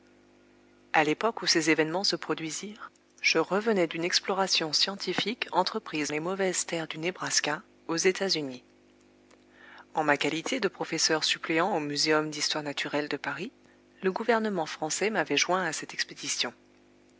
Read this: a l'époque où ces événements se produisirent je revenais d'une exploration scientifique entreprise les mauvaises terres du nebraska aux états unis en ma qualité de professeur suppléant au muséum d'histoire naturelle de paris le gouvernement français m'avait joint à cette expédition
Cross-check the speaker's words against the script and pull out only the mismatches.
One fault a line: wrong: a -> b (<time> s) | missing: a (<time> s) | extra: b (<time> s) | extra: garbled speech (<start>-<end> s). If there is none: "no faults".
no faults